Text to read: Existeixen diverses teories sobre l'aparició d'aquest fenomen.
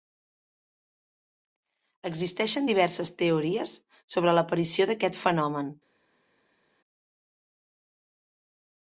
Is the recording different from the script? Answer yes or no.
no